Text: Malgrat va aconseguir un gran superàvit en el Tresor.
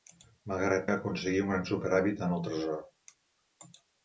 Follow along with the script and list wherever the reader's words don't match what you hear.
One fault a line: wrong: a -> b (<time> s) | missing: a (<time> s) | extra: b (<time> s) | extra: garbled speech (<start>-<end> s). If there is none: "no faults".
no faults